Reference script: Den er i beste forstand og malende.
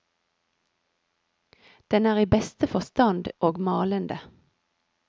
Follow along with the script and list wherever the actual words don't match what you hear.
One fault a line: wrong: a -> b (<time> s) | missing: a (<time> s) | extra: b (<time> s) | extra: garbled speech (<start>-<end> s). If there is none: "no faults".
no faults